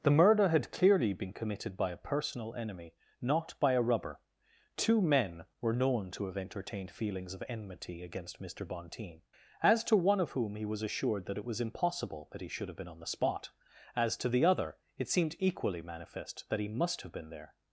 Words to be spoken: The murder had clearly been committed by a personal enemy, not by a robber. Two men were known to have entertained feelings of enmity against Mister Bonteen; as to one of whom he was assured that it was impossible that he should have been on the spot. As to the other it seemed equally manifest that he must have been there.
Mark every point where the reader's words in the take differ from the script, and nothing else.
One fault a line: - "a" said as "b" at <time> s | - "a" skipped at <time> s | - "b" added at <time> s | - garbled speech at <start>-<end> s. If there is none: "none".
- "robber" said as "rubber" at 3.8 s